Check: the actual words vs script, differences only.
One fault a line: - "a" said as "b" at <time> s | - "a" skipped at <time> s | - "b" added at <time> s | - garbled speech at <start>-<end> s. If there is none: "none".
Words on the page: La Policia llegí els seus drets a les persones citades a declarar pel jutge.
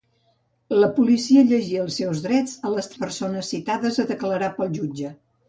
none